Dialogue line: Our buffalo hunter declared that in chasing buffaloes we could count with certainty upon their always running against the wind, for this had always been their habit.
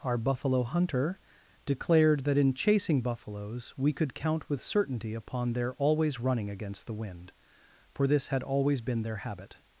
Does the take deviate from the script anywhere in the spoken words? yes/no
no